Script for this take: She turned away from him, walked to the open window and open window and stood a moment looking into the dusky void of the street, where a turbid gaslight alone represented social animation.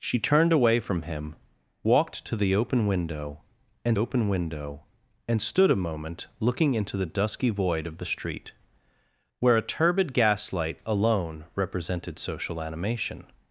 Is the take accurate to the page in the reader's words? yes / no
yes